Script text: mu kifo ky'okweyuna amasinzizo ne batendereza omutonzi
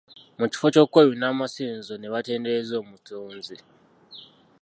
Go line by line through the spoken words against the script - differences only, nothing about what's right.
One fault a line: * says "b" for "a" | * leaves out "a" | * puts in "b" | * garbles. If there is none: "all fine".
all fine